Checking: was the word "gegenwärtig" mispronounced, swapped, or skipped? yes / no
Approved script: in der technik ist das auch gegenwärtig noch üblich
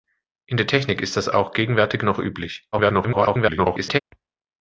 no